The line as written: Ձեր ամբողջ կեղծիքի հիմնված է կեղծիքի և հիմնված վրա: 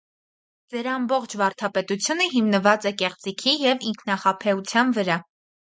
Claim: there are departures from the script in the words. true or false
true